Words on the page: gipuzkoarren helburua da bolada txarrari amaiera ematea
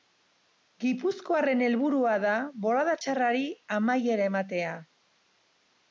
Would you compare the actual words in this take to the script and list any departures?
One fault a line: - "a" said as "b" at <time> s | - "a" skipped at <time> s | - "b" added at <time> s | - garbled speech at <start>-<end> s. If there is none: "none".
none